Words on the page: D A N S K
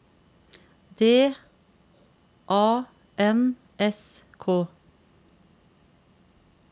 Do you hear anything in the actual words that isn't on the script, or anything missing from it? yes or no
no